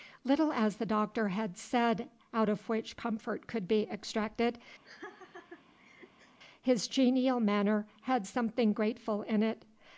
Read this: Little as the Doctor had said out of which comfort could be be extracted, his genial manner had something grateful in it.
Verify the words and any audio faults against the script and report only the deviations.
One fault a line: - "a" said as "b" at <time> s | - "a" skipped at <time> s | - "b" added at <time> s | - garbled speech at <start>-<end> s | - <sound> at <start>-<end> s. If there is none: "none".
- "be" skipped at 3.8 s
- laugh at 4.8-6.4 s